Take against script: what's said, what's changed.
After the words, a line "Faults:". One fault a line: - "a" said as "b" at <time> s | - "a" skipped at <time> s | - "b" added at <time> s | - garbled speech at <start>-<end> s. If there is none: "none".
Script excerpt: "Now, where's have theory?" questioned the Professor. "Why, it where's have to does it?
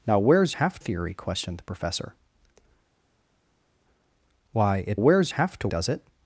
"Now, where's have theory?" questioned the Professor. "Why, it where's have to does it?
Faults:
none